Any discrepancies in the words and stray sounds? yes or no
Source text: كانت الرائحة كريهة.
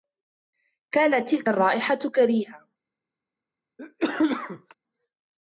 yes